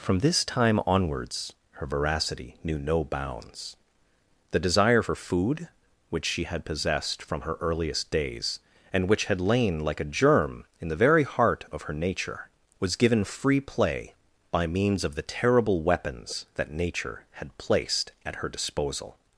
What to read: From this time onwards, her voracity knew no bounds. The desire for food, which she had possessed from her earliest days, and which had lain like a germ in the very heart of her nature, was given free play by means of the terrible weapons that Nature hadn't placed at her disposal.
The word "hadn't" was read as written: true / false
false